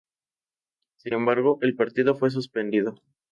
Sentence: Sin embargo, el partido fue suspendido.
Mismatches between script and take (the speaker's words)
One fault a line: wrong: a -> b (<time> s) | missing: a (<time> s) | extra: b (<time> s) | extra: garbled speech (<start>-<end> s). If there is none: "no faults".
no faults